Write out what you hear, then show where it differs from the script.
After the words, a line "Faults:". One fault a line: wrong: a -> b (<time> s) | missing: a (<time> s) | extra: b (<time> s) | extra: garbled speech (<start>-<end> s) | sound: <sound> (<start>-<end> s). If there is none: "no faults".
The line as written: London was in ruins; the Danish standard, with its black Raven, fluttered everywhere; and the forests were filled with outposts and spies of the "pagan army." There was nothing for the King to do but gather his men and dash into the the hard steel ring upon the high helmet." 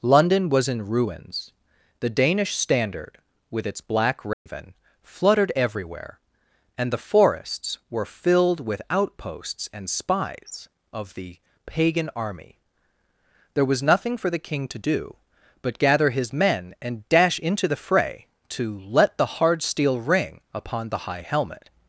London was in ruins; the Danish standard, with its black Raven, fluttered everywhere; and the forests were filled with outposts and spies of the "pagan army." There was nothing for the King to do but gather his men and dash into the fray to "let the hard steel ring upon the high helmet."
Faults:
sound: dropout (4.3-4.5 s)
extra: fray to let (17.8 s)